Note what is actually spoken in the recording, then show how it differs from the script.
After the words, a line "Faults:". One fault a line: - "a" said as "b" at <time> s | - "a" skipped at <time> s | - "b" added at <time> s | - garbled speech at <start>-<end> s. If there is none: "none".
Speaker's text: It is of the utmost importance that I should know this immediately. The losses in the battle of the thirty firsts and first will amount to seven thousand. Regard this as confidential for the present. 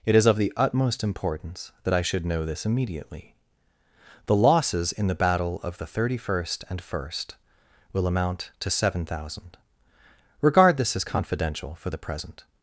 It is of the utmost importance that I should know this immediately. The losses in the battle of the thirty first and first will amount to seven thousand. Regard this as confidential for the present.
Faults:
- "firsts" said as "first" at 6.2 s